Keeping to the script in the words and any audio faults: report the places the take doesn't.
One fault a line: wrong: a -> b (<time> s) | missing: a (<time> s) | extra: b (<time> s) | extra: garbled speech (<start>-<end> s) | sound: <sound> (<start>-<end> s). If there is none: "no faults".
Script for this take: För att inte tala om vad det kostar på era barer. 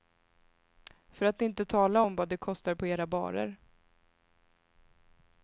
no faults